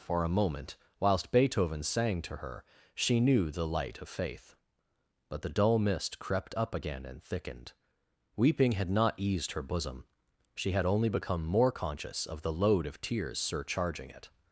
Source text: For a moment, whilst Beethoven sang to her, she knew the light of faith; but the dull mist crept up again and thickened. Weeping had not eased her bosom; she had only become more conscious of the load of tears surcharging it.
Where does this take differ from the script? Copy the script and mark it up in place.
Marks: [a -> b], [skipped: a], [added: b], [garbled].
For a moment, whilst Beethoven sang to her, she knew the light of faith; but the dull mist crept up again and thickened. Weeping had not eased her bosom; she had only become more conscious of the load of tears surcharging it.